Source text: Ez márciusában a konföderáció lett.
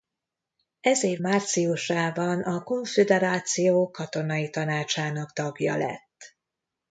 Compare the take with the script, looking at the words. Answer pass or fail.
fail